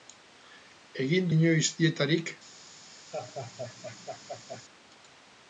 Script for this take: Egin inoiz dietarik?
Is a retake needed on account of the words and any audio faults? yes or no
yes